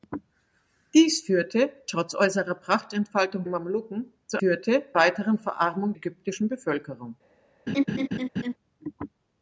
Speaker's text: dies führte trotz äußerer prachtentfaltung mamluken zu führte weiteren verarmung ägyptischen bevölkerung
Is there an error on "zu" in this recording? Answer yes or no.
no